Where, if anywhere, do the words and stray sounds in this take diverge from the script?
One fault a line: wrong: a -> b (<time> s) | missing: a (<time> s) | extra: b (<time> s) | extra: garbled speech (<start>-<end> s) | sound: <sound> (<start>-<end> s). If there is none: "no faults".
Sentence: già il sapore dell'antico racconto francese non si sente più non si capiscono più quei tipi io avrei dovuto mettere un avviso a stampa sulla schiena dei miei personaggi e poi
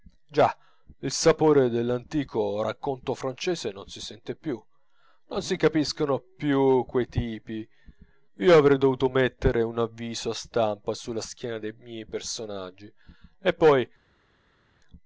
no faults